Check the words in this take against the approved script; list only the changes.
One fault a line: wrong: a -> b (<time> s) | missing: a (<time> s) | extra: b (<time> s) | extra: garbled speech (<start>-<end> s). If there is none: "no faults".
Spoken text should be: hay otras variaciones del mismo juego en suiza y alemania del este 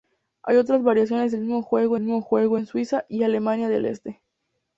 extra: mismo juego (2.0 s)